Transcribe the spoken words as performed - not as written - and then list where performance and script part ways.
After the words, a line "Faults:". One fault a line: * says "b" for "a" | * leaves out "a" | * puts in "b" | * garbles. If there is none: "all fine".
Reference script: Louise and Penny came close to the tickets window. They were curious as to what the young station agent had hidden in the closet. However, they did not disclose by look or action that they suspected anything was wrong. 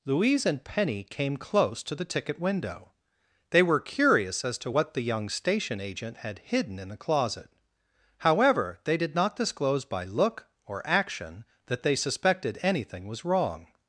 Louise and Penny came close to the ticket window. They were curious as to what the young station agent had hidden in the closet. However, they did not disclose by look or action that they suspected anything was wrong.
Faults:
* says "ticket" for "tickets"